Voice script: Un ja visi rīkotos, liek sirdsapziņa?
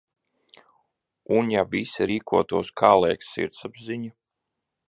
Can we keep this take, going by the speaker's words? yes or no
no